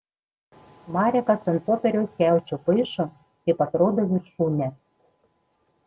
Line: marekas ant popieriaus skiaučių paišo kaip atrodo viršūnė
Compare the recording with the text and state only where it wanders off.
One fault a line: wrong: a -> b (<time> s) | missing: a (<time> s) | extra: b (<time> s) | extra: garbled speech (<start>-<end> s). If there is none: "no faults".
no faults